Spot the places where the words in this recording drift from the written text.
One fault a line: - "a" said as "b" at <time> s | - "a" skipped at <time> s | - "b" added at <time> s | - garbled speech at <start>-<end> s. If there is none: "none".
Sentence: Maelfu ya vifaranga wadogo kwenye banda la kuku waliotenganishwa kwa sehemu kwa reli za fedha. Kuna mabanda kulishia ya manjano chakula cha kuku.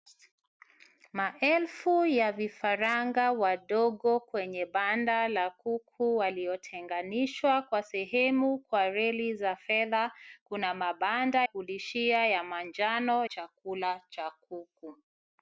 none